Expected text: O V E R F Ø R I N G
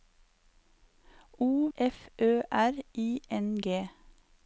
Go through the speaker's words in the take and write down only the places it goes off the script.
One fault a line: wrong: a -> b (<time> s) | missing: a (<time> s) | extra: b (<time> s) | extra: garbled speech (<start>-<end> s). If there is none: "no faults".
missing: V E R (1.7 s)